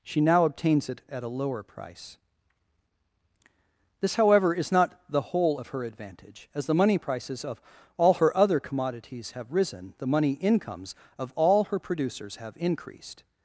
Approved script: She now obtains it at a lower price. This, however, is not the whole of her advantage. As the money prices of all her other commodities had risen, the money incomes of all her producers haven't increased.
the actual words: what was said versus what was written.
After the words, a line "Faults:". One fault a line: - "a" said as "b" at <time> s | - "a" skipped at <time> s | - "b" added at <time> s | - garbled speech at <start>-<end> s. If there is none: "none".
She now obtains it at a lower price. This, however, is not the whole of her advantage. As the money prices of all her other commodities have risen, the money incomes of all her producers have increased.
Faults:
- "had" said as "have" at 9.3 s
- "haven't" said as "have" at 12.4 s